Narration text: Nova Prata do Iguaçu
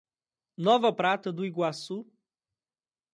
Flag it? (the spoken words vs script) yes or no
no